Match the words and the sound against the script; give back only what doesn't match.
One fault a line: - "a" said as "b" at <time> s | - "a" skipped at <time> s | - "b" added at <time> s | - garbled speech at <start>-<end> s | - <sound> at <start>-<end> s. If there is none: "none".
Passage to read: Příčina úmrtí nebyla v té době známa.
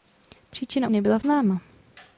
- "úmrtí" skipped at 0.9 s
- "té době" skipped at 1.2 s